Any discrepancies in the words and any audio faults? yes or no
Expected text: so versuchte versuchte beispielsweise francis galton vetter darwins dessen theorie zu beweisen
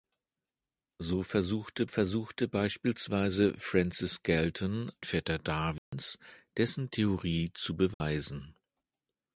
yes